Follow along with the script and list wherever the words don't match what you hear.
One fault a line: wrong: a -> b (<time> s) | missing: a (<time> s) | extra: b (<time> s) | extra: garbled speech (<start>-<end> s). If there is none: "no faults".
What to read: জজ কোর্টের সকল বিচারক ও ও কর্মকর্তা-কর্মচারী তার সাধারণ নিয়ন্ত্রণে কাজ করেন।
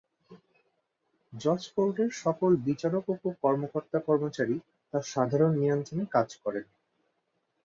no faults